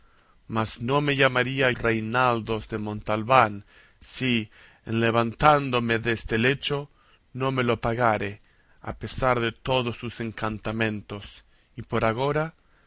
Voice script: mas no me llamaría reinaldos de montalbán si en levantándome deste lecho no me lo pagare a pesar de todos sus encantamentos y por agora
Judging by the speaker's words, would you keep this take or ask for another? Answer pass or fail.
pass